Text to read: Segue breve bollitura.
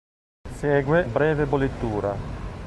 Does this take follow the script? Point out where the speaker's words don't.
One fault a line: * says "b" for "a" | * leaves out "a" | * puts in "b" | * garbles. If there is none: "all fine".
all fine